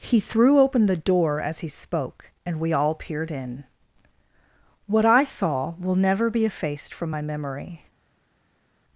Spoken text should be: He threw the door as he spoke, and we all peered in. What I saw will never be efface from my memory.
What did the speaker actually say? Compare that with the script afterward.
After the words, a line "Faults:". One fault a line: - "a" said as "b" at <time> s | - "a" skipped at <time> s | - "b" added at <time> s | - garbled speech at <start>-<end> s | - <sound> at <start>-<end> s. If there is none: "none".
He threw open the door as he spoke, and we all peered in. What I saw will never be effaced from my memory.
Faults:
- "open" added at 0.6 s
- "efface" said as "effaced" at 6.4 s